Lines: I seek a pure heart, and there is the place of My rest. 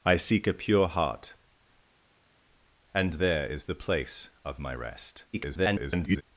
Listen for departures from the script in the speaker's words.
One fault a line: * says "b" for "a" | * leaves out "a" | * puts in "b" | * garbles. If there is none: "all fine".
* garbles